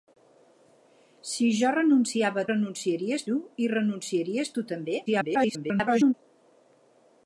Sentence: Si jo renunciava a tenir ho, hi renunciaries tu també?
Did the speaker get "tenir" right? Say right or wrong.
wrong